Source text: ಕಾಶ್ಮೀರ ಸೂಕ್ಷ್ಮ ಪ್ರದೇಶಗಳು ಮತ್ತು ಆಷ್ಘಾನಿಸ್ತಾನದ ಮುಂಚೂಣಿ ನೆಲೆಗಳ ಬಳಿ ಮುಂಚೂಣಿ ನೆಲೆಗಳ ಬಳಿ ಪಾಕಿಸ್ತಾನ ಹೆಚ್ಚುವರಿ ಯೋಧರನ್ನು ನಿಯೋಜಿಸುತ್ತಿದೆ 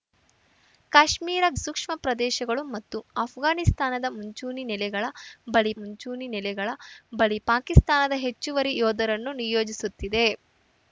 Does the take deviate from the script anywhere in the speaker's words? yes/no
no